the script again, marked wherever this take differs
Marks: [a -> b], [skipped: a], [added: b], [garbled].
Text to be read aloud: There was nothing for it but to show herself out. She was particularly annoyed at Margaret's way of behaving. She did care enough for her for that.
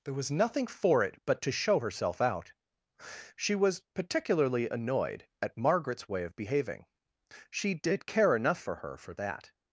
There was nothing for it but to show herself out. She was particularly annoyed at Margaret's way of behaving. She did care enough for her for that.